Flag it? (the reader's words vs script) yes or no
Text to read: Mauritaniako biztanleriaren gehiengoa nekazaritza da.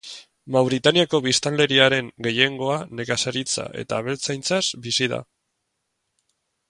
yes